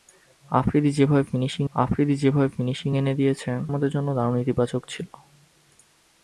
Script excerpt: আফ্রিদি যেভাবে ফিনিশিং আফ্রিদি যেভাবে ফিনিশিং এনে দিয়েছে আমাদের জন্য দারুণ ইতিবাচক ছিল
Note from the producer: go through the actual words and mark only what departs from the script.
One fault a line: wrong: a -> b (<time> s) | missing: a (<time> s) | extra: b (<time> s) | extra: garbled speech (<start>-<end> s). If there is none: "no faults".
no faults